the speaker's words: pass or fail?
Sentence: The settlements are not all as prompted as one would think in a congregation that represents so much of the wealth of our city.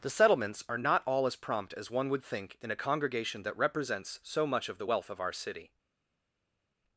fail